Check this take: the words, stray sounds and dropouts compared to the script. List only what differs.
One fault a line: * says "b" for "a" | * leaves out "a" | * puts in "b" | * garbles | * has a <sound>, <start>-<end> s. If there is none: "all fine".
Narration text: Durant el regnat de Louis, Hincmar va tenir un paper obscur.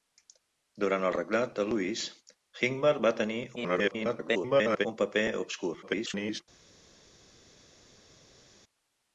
* garbles
* garbles